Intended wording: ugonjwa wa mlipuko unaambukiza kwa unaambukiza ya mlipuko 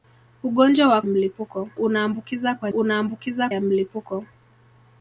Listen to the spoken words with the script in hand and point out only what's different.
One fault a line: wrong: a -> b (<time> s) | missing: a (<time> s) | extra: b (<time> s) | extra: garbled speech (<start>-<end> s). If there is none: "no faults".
no faults